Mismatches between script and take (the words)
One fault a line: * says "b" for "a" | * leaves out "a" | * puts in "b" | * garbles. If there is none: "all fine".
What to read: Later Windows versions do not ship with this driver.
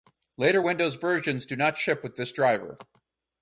all fine